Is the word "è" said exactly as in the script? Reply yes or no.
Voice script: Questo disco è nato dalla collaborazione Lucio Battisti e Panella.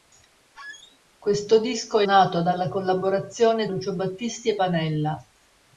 yes